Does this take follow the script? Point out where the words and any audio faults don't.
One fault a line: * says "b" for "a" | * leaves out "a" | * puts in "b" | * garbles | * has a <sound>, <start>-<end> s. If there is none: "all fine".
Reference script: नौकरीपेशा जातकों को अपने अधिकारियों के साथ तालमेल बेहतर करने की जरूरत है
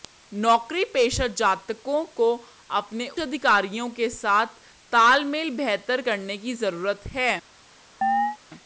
* has a chirp, 8.0-8.4 s